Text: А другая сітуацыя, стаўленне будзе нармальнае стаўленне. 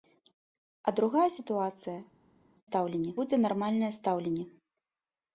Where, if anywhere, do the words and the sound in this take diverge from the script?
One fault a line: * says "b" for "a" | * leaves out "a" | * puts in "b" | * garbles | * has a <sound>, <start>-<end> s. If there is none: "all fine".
all fine